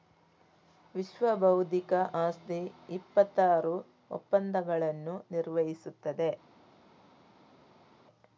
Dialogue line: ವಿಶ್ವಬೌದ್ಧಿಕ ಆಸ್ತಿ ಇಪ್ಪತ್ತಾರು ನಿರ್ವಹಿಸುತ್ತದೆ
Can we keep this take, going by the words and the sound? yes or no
no